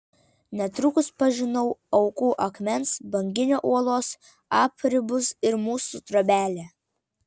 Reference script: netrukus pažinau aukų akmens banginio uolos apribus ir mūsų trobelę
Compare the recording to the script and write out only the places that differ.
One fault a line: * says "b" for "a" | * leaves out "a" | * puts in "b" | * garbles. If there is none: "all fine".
all fine